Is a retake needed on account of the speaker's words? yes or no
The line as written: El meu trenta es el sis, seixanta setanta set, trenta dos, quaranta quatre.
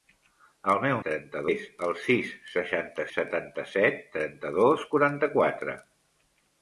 no